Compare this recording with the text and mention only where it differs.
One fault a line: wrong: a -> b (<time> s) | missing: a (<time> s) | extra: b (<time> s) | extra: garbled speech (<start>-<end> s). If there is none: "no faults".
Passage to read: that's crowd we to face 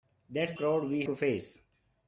no faults